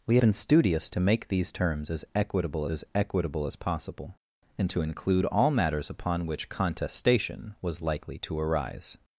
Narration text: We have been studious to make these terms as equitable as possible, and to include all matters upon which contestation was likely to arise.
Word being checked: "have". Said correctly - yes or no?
no